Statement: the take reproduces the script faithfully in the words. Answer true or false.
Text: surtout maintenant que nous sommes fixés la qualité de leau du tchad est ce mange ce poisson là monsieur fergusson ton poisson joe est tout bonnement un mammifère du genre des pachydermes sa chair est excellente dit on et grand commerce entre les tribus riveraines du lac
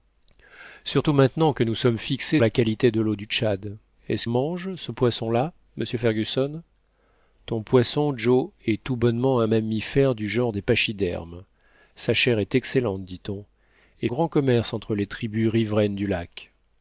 true